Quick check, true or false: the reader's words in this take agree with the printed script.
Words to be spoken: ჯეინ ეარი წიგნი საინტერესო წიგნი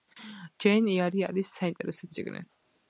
false